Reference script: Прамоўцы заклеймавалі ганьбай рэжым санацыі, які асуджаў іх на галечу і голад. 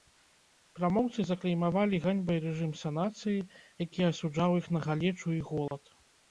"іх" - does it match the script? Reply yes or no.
yes